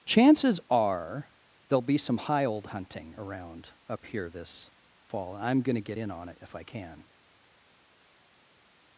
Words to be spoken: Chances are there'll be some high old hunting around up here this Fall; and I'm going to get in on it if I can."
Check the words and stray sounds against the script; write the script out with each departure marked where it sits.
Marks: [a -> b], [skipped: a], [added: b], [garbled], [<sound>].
Chances are there'll be some high old hunting around up here this Fall; [skipped: and] I'm going to get in on it if I can."